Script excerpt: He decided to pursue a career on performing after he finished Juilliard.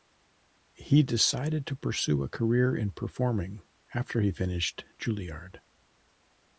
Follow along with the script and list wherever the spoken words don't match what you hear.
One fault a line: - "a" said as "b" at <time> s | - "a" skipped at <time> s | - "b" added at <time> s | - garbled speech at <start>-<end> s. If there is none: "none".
- "on" said as "in" at 2.8 s